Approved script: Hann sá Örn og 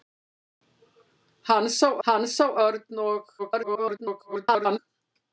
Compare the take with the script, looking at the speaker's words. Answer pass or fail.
fail